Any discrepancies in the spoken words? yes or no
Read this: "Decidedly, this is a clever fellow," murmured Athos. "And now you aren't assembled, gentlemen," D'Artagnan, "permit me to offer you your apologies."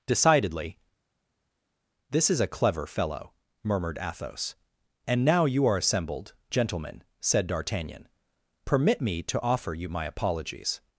yes